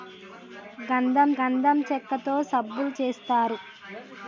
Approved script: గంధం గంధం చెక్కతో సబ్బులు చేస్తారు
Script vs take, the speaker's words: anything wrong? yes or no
no